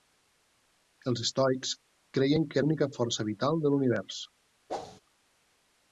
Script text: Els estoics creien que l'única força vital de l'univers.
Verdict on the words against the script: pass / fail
pass